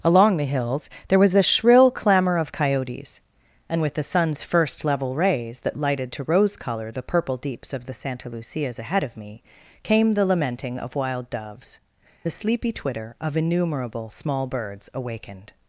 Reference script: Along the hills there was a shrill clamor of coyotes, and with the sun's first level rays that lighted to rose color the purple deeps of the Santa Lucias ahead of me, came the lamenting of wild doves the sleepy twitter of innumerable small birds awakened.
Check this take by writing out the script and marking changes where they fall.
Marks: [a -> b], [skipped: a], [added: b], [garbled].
Along the hills there was a shrill clamor of coyotes, and with the sun's first level rays that lighted to rose color the purple deeps of the Santa Lucias ahead of me, came the lamenting of wild doves the sleepy twitter of innumerable small birds awakened.